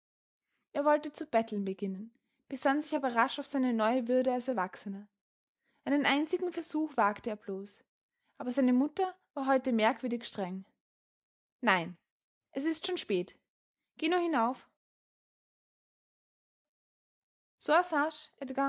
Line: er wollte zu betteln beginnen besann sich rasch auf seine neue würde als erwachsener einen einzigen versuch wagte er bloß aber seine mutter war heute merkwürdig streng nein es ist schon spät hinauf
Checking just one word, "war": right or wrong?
right